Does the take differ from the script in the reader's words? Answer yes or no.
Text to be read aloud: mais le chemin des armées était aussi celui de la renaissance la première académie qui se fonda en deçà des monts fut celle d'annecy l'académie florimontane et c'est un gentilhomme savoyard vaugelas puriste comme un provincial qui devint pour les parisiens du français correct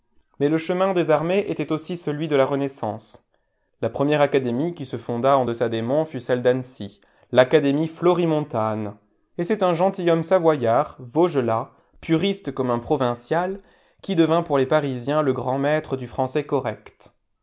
yes